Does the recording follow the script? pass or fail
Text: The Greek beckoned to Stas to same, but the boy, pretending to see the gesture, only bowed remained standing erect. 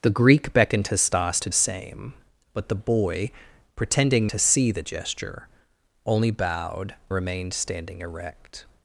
pass